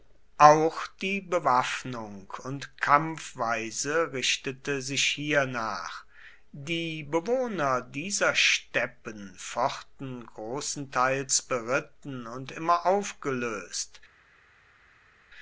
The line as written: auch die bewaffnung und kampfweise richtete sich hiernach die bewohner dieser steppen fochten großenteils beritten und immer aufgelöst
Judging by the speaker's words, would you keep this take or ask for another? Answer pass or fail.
pass